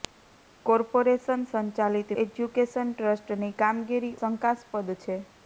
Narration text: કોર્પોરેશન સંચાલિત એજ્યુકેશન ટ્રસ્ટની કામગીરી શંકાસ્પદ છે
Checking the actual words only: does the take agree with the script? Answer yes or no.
yes